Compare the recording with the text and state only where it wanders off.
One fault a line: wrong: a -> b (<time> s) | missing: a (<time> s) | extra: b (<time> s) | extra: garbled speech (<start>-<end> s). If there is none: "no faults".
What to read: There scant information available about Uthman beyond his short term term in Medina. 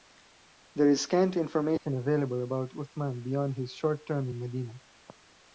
extra: is (0.9 s)
missing: term (4.3 s)